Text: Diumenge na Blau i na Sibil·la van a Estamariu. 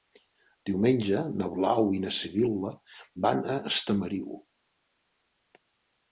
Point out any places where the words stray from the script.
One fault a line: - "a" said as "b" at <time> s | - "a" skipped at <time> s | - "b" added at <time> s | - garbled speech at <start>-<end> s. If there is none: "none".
none